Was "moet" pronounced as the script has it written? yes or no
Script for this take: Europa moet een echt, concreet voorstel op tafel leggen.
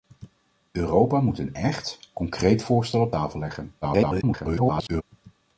yes